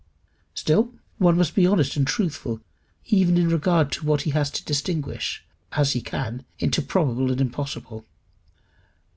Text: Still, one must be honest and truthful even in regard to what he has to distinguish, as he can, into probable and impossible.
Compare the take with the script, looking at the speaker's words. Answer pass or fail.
pass